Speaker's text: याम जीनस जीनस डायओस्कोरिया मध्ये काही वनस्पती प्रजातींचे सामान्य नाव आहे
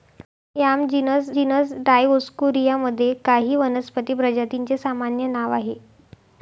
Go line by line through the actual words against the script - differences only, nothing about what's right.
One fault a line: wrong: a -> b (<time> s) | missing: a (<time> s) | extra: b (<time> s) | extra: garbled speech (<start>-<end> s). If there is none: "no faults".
no faults